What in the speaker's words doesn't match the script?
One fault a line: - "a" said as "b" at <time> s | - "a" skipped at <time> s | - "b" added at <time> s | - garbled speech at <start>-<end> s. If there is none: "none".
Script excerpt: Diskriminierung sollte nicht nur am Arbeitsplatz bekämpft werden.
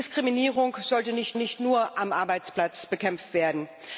- "nicht" added at 1.4 s